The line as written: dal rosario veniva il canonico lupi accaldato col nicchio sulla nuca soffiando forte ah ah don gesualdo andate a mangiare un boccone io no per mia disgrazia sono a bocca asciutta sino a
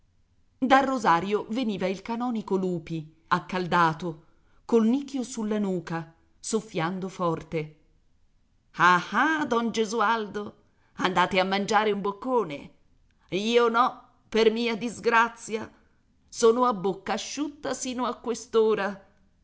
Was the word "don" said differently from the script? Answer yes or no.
no